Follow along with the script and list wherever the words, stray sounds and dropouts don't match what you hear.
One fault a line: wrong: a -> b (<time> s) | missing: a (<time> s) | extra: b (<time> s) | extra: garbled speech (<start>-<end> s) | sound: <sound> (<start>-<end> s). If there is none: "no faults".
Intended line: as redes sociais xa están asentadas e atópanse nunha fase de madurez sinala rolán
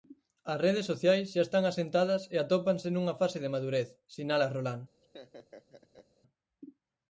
sound: laugh (5.0-6.1 s)